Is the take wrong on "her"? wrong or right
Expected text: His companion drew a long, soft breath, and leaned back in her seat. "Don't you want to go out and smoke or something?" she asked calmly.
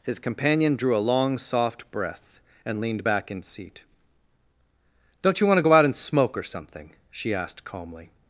wrong